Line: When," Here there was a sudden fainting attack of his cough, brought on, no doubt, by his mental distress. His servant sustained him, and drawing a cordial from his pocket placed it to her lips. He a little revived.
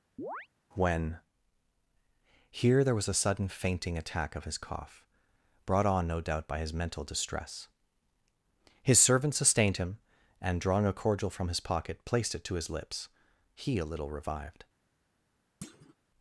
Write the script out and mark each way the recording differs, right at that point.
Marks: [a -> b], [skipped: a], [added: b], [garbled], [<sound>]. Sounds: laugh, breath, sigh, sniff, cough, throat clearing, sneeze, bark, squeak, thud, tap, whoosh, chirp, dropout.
[chirp] When," Here there was a sudden fainting attack of his cough, brought on, no doubt, by his mental distress. His servant sustained him, and drawing a cordial from his pocket placed it to [her -> his] lips. He a little revived. [thud]